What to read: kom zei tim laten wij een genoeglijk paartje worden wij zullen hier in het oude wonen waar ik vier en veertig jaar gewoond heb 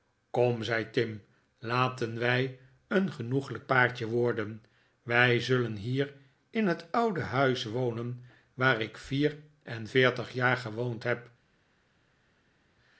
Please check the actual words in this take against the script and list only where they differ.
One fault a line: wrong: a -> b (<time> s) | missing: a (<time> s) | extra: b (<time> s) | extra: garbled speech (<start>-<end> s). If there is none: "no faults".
extra: huis (7.2 s)